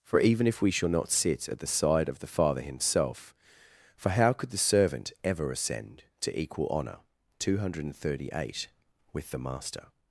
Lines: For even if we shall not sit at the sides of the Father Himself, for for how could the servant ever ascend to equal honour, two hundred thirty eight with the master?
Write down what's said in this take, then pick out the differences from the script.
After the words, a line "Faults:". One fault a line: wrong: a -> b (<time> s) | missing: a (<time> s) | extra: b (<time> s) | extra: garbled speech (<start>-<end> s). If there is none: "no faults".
For even if we shall not sit at the side of the Father Himself, for how could the servant ever ascend to equal honour, two hundred thirty eight with the master?
Faults:
wrong: sides -> side (1.7 s)
missing: for (4.1 s)